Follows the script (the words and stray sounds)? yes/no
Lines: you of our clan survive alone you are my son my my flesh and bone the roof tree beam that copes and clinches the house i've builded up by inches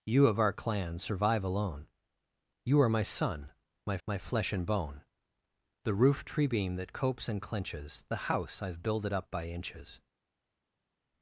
yes